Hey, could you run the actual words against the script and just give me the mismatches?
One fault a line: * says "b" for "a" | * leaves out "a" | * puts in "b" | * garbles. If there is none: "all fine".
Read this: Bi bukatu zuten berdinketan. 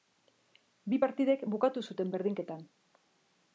* puts in "partidek"